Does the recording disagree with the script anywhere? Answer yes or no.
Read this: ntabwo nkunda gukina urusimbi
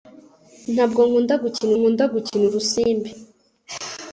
yes